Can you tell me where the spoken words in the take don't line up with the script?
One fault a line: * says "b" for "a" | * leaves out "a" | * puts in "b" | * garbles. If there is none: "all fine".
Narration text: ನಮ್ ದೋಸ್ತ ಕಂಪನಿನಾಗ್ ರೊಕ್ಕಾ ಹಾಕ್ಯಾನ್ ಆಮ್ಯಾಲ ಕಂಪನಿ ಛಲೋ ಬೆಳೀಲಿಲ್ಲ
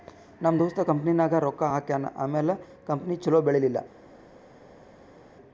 all fine